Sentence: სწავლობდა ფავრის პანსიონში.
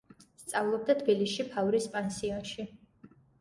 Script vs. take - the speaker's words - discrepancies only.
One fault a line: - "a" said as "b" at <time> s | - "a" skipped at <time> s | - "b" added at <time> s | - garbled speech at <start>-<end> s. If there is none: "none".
- "თბილისში" added at 1.0 s